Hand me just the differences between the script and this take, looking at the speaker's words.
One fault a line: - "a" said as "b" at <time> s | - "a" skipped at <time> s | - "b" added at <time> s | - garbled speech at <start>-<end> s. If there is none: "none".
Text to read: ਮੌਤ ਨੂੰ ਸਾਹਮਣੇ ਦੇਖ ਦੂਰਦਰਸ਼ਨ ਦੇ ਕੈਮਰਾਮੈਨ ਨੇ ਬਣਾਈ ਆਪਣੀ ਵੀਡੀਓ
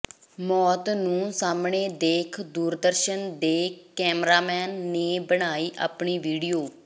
none